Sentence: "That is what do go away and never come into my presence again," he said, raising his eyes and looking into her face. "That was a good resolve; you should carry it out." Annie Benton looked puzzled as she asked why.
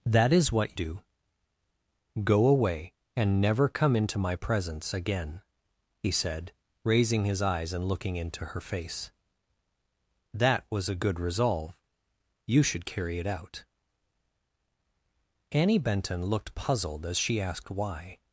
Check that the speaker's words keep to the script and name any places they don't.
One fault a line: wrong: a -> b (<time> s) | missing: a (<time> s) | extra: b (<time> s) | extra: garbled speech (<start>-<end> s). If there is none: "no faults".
no faults